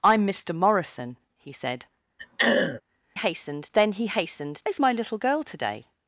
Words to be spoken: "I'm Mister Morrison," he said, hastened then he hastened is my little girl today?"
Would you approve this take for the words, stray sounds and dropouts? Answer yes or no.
no